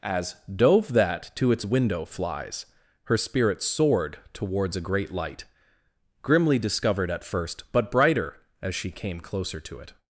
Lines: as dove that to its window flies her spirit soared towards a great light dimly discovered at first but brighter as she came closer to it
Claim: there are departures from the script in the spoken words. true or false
true